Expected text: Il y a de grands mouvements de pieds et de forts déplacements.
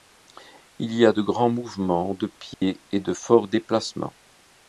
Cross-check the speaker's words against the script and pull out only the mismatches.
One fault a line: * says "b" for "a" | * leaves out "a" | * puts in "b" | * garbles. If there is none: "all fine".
all fine